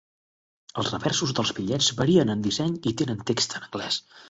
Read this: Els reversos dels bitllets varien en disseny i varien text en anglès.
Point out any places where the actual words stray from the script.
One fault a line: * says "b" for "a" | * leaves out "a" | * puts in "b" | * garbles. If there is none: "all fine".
* says "tenen" for "varien"